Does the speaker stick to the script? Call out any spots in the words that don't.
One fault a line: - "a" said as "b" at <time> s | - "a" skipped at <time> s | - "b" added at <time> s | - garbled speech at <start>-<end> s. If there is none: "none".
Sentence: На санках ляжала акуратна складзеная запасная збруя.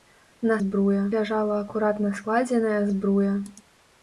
- "санках" said as "збруя" at 0.6 s
- "запасная" skipped at 2.8 s